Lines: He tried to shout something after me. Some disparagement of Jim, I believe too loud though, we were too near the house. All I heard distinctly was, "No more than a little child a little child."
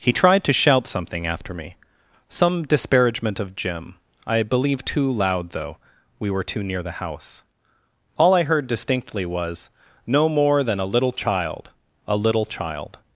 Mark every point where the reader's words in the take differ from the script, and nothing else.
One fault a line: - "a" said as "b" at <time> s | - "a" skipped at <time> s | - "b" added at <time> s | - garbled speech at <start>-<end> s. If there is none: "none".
none